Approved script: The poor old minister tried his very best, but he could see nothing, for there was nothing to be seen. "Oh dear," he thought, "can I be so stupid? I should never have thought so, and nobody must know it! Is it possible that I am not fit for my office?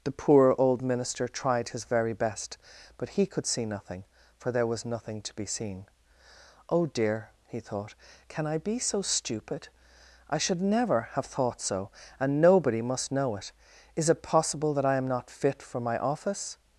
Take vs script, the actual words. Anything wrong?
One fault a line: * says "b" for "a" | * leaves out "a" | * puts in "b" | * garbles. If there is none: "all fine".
all fine